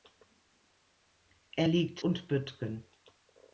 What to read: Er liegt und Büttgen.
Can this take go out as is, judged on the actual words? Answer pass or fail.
pass